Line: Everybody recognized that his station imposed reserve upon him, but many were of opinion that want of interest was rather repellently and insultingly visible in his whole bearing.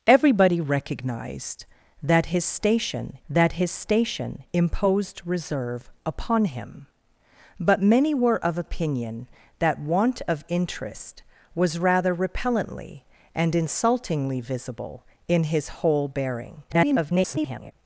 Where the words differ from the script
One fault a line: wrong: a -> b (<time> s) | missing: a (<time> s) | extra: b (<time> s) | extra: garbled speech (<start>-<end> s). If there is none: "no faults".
extra: that his station (3.3 s)
extra: garbled speech (16.7-17.7 s)